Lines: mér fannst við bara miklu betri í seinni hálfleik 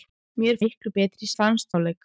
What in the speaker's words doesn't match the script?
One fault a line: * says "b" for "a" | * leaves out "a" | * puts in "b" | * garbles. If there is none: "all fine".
* leaves out "fannst við bara"
* says "fannst" for "seinni"